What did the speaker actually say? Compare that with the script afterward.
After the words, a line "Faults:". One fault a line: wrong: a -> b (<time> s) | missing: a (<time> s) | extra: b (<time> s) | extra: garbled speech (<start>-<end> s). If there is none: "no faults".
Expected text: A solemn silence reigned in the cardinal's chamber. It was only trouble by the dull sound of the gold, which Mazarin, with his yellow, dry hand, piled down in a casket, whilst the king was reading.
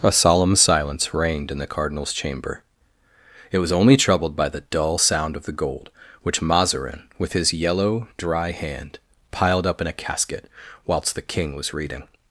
A solemn silence reigned in the cardinal's chamber. It was only troubled by the dull sound of the gold, which Mazarin, with his yellow, dry hand, piled up in a casket, whilst the king was reading.
Faults:
wrong: trouble -> troubled (4.0 s)
wrong: down -> up (9.7 s)